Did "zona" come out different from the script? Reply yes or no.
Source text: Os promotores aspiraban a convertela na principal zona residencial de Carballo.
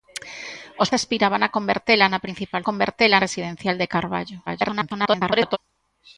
yes